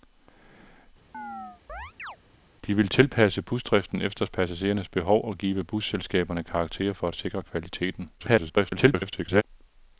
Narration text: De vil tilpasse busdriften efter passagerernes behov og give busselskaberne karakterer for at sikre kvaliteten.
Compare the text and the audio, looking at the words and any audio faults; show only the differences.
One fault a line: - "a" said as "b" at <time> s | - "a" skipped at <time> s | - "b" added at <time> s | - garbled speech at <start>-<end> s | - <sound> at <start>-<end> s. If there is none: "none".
- chirp at 1.1-2.2 s
- garbled speech at 8.2-9.4 s